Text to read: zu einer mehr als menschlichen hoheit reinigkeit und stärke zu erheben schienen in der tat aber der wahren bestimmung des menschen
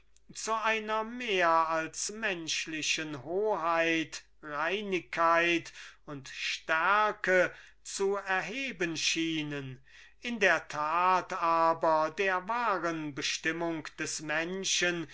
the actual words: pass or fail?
pass